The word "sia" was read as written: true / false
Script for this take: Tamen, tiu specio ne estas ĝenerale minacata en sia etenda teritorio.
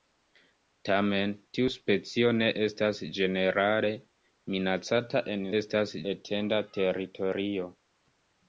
false